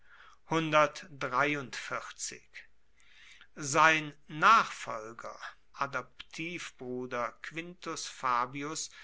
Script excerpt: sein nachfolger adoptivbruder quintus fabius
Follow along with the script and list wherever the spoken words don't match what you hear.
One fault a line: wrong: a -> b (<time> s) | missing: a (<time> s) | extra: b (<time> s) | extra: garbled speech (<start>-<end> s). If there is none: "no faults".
no faults